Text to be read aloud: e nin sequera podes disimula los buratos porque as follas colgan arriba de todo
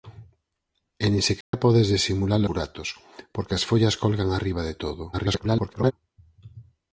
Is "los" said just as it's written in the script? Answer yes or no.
no